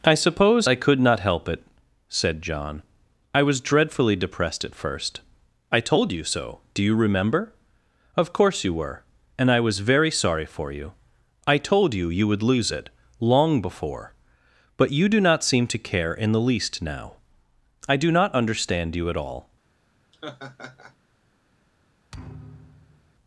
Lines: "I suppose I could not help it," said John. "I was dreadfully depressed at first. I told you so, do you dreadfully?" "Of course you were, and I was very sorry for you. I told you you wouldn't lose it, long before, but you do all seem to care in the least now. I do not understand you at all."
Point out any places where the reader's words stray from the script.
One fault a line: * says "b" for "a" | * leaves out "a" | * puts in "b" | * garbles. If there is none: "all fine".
* says "remember" for "dreadfully"
* says "would" for "wouldn't"
* says "not" for "all"